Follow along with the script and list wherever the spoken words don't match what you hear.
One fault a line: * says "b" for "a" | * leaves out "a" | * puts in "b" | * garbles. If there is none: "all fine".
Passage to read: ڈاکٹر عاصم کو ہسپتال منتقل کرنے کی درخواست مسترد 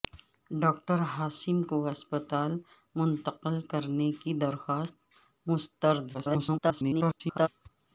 * garbles